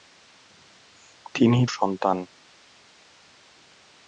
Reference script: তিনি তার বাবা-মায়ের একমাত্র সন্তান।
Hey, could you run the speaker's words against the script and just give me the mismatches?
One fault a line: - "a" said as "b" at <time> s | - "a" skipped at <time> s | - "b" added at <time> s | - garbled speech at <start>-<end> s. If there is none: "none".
- "তার বাবা-মায়ের একমাত্র" skipped at 1.6 s